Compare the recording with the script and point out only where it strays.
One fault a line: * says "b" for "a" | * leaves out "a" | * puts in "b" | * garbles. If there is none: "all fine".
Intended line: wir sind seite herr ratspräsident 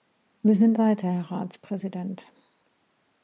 all fine